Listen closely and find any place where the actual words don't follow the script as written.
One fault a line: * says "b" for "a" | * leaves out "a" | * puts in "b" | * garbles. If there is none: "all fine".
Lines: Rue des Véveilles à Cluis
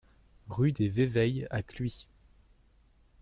all fine